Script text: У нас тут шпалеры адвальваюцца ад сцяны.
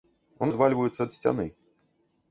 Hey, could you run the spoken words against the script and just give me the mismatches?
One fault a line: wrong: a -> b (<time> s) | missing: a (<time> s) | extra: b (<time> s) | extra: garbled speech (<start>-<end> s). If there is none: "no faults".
missing: нас тут шпалеры (0.5 s)